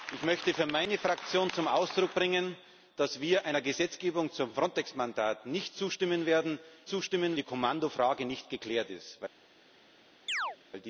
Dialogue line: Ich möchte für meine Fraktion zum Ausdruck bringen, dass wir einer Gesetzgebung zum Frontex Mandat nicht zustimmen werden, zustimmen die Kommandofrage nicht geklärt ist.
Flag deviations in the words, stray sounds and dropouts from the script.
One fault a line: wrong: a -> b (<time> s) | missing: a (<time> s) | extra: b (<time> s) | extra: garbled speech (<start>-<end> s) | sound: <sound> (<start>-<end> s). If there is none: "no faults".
sound: chirp (10.3-10.6 s)